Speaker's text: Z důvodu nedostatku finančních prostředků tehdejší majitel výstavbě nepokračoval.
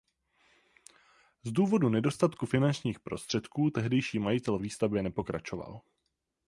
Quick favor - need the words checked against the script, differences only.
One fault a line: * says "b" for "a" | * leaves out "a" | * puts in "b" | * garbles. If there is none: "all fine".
all fine